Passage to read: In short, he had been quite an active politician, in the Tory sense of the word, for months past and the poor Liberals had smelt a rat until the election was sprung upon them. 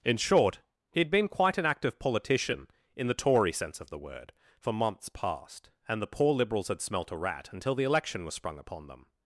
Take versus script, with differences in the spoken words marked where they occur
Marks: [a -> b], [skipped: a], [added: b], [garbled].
In short, he had been quite an active politician, in the Tory sense of the word, for months past and the poor Liberals had smelt a rat until the election was sprung upon them.